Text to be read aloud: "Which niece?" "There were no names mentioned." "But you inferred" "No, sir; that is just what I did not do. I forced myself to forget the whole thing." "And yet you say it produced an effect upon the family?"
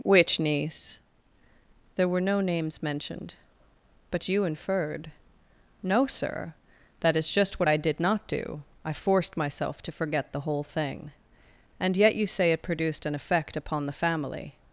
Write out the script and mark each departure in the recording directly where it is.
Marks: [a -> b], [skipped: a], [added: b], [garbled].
"Which niece?" "There were no names mentioned." "But you inferred" "No, sir; that is just what I did not do. I forced myself to forget the whole thing." "And yet you say it produced an effect upon the family?"